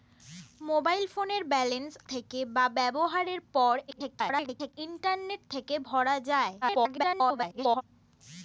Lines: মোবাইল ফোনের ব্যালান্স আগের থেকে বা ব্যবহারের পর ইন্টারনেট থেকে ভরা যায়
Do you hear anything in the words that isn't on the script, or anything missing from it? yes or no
yes